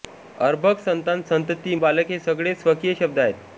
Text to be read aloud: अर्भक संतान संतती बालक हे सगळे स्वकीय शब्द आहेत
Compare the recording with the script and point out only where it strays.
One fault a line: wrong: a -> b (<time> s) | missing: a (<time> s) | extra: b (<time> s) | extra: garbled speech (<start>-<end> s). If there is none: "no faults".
no faults